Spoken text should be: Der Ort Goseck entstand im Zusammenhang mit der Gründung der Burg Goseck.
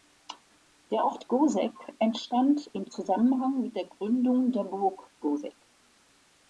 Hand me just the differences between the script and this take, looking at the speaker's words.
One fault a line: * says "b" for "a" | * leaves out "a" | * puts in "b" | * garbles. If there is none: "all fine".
all fine